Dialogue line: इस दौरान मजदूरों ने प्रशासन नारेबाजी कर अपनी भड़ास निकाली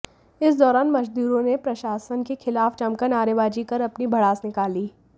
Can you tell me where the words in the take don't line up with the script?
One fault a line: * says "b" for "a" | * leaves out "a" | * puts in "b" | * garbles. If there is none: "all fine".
* puts in "के खिलाफ जमकर"